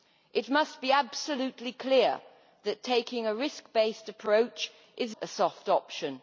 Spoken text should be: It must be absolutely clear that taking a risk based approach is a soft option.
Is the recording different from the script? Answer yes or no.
no